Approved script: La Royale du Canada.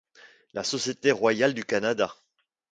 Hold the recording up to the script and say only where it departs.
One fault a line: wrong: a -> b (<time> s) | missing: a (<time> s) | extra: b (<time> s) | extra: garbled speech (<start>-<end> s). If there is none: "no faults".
extra: Société (0.6 s)